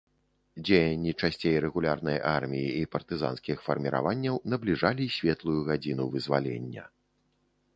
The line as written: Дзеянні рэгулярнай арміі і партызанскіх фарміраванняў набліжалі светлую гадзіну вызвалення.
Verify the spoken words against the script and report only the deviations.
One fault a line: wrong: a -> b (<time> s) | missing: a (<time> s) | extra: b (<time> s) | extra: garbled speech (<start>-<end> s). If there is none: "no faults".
extra: часцей (1.2 s)